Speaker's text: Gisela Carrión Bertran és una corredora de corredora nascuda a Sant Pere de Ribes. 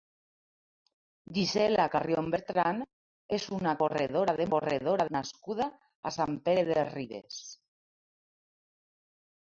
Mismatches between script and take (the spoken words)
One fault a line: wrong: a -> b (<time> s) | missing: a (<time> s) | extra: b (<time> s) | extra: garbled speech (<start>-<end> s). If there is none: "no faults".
no faults